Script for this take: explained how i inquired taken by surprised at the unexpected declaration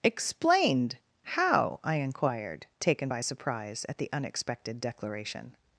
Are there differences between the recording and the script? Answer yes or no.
yes